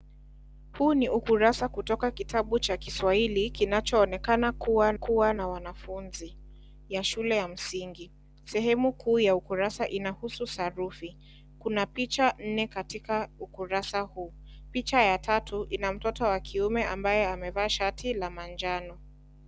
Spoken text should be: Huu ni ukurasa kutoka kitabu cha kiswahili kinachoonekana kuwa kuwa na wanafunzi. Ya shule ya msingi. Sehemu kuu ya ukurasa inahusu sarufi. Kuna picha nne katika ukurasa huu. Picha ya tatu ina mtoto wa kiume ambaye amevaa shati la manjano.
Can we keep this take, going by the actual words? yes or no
yes